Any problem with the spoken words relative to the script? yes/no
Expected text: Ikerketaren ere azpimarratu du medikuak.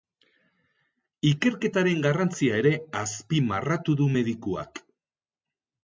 yes